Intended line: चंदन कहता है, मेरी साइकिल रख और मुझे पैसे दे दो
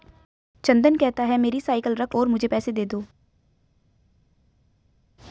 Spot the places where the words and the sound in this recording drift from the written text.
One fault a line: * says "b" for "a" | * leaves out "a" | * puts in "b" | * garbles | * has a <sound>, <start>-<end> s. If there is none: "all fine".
all fine